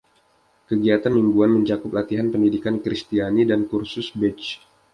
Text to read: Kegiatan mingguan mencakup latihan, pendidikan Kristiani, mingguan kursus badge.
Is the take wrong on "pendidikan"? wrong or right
right